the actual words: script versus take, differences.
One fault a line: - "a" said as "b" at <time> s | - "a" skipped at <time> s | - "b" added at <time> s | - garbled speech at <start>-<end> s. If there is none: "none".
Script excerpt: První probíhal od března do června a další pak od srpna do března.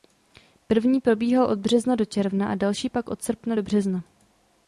none